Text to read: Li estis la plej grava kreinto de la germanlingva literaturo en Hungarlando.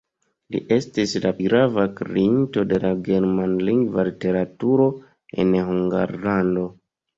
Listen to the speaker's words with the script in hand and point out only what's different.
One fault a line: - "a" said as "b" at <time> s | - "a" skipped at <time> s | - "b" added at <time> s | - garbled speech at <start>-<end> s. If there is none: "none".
- "plej" skipped at 1.3 s